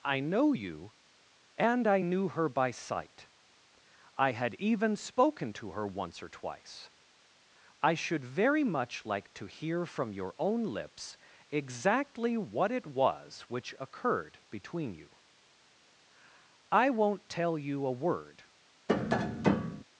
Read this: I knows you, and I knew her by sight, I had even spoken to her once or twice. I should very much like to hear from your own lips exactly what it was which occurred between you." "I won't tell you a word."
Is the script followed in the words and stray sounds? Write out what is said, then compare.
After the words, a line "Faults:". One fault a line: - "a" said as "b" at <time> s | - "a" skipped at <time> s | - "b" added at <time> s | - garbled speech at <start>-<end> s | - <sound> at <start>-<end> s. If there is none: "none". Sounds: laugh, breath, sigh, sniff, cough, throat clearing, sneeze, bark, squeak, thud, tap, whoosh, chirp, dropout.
I know you, and I knew her by sight, I had even spoken to her once or twice. I should very much like to hear from your own lips exactly what it was which occurred between you." "I won't tell you a word."
Faults:
- "knows" said as "know" at 0.2 s
- tap at 18.9-19.8 s